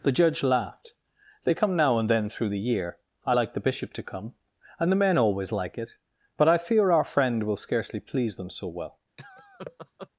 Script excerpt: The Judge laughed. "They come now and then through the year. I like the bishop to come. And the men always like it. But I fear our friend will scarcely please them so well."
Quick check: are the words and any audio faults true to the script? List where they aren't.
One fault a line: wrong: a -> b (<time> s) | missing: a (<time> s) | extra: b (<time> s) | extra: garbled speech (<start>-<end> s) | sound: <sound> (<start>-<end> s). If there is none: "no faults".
sound: laugh (9.2-10.1 s)